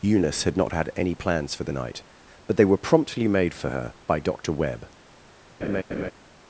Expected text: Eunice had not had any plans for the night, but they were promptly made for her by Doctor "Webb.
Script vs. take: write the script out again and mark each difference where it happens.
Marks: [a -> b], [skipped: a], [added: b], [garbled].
Eunice had not had any plans for the night, but they were promptly made for her by Doctor "Webb.